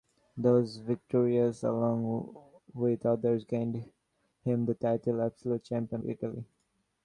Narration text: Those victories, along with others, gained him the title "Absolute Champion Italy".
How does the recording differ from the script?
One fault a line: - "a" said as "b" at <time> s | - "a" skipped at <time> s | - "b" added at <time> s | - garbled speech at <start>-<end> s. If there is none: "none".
none